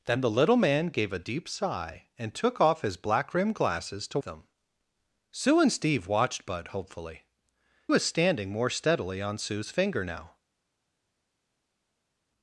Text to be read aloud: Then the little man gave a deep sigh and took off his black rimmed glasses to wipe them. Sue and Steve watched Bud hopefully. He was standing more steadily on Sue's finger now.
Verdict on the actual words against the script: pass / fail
fail